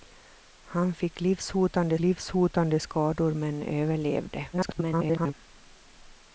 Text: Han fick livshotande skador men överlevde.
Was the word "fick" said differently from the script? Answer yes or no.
no